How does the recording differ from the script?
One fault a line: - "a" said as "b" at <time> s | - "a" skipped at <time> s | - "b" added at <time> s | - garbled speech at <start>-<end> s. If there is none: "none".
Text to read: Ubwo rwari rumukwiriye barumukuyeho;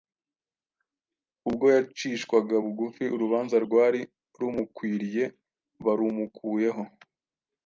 - "yacishwaga bugufi urubanza" added at 1.8 s